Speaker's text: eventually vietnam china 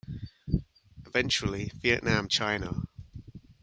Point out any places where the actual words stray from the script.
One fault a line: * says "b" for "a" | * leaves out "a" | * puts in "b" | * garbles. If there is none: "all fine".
all fine